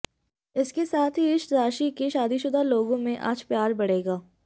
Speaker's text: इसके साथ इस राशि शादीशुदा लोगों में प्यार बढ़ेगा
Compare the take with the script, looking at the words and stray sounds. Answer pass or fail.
fail